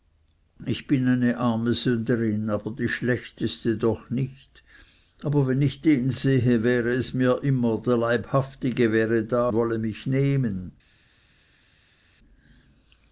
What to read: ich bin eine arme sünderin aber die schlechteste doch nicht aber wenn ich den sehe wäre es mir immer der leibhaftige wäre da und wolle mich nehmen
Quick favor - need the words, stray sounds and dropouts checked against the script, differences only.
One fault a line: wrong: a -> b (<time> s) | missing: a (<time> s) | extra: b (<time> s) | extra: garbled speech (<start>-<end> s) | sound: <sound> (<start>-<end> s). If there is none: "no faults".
missing: und (9.5 s)